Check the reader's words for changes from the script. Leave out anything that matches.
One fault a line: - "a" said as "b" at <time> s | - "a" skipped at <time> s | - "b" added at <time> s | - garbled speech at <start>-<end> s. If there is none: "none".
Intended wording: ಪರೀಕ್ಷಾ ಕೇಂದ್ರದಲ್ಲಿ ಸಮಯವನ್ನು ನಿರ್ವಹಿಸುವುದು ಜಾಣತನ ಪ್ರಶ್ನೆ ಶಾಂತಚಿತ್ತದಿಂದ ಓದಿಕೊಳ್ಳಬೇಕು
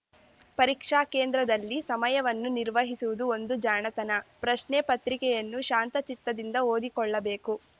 - "ಒಂದು" added at 3.4 s
- "ಪತ್ರಿಕೆಯನ್ನು" added at 4.9 s